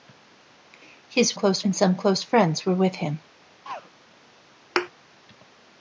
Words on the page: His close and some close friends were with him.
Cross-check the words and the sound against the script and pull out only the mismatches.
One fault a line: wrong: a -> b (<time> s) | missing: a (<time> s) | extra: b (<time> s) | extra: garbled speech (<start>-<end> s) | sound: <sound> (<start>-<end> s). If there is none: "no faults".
sound: throat clearing (3.6-3.9 s)
sound: thud (4.8-4.9 s)